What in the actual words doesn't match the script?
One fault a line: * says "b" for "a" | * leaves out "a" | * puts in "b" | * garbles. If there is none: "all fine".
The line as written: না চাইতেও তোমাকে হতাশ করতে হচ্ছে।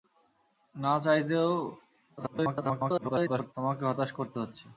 * garbles